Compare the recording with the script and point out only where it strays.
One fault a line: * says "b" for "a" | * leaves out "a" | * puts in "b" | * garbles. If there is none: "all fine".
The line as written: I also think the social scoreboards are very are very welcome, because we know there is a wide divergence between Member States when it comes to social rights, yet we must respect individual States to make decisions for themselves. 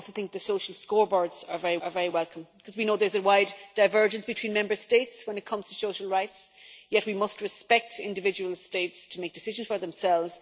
all fine